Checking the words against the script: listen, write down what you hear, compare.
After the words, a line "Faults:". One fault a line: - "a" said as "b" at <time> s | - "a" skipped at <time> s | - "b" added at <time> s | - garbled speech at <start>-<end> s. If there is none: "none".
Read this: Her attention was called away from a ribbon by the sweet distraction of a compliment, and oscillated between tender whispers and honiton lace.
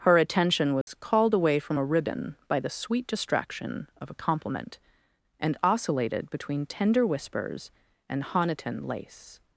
Her attention was called away from a ribbon by the sweet distraction of a compliment, and oscillated between tender whispers and honiton lace.
Faults:
none